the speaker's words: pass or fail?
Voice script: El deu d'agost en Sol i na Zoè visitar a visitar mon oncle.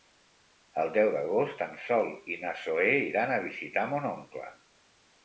fail